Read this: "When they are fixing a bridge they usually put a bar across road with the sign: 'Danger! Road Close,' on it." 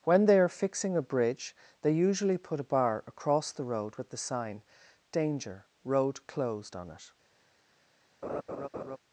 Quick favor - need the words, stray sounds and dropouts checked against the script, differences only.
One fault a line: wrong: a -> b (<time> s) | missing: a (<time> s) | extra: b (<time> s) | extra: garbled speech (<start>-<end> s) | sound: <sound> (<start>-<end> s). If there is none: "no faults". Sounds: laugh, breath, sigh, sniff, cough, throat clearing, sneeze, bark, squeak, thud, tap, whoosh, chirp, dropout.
extra: the (3.5 s)
wrong: Close -> Closed (6.2 s)
sound: laugh (8.2-9.0 s)